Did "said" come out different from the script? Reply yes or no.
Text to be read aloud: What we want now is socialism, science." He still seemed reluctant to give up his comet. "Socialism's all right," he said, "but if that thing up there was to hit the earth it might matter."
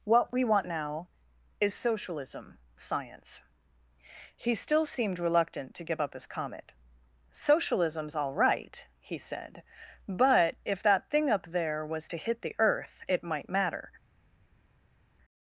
no